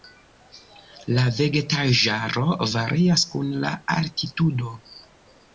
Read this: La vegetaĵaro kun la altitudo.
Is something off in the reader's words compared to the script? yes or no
yes